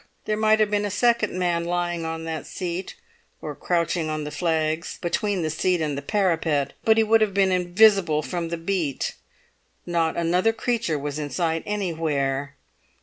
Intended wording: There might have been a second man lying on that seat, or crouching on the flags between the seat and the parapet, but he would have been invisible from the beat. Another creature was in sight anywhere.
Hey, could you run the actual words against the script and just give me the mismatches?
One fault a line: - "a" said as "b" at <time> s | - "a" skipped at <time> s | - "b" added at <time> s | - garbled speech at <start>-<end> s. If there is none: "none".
- "Not" added at 9.8 s